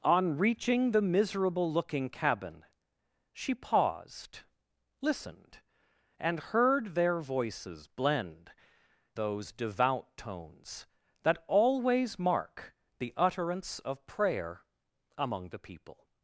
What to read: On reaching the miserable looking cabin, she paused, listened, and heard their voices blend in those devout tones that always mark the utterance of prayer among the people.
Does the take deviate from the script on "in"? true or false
true